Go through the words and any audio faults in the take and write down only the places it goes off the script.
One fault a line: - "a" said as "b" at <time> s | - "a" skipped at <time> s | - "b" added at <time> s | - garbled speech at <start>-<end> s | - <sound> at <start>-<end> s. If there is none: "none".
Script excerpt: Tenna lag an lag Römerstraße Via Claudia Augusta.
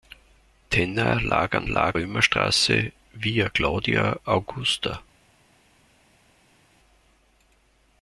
none